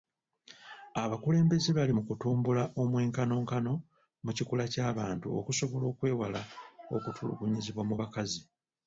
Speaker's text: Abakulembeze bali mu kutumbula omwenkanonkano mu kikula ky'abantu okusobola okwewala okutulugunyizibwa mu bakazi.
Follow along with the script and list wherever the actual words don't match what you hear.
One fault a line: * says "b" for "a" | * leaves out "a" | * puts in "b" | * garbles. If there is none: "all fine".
all fine